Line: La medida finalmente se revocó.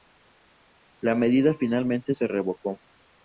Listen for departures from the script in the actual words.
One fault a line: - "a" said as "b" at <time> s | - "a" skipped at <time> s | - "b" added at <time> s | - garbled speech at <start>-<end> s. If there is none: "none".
none